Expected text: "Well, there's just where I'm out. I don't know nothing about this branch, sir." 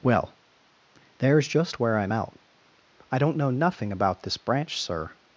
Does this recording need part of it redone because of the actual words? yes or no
no